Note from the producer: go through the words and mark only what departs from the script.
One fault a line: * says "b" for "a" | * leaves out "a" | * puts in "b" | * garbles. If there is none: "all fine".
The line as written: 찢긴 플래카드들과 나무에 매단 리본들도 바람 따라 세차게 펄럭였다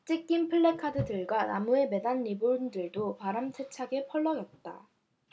* leaves out "따라"